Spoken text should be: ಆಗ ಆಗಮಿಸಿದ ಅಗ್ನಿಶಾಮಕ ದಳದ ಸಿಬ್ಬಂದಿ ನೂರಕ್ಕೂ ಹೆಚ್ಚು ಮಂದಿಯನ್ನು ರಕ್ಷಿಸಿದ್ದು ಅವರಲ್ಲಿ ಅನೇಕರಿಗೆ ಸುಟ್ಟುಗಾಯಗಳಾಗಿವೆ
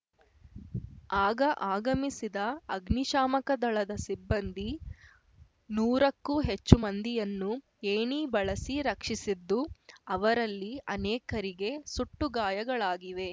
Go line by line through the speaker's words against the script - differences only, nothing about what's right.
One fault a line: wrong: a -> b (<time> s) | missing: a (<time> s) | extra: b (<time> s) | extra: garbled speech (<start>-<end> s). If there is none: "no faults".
extra: ಏಣಿ ಬಳಸಿ (7.9 s)